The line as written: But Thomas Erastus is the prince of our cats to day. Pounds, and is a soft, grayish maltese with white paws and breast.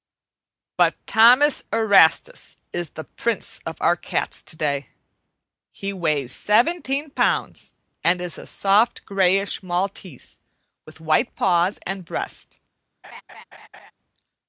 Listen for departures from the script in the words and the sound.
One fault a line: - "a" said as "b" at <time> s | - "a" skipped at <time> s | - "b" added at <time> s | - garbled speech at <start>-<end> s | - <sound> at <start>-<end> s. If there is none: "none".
- "He weighs seventeen" added at 5.7 s
- laugh at 13.0-13.9 s